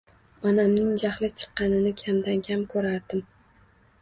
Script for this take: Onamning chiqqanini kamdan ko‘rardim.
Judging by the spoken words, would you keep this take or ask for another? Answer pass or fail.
fail